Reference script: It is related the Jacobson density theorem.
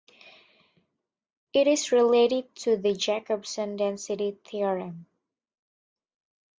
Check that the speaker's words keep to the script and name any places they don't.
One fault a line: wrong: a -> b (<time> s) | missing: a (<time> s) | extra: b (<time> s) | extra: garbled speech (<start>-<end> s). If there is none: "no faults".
extra: to (2.5 s)